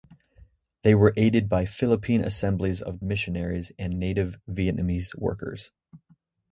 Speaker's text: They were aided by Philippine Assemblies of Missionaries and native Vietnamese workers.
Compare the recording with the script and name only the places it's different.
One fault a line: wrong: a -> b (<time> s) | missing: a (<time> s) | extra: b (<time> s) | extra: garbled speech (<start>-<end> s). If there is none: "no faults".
no faults